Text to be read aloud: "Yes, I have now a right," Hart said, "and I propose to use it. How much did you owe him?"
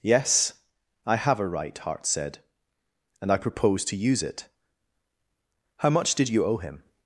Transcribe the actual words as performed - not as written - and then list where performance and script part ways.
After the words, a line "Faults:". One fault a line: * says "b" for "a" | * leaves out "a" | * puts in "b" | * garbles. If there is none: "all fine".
"Yes, I have a right," Hart said, "and I propose to use it. How much did you owe him?"
Faults:
* leaves out "now"